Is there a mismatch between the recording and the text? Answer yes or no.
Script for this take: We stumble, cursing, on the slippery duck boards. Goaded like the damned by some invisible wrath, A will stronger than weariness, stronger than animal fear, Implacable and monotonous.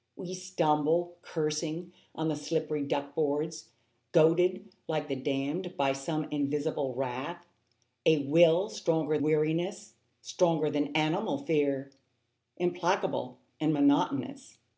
yes